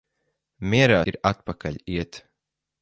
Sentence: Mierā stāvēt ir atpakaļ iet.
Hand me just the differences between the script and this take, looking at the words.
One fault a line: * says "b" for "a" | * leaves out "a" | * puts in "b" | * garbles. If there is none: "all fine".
* leaves out "stāvēt"